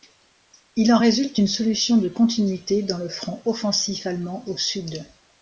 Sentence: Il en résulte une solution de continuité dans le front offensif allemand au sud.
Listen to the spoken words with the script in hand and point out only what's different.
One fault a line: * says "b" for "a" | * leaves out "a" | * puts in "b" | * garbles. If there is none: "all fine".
all fine